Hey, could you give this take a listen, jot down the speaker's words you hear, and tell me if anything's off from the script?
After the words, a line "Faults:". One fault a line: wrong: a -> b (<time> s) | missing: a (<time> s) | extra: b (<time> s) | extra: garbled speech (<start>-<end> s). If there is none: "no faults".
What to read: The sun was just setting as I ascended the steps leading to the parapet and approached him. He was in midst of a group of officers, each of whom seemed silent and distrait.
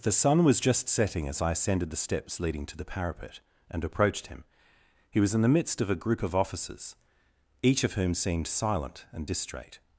The sun was just setting as I ascended the steps leading to the parapet and approached him. He was in the midst of a group of officers, each of whom seemed silent and distrait.
Faults:
extra: the (5.4 s)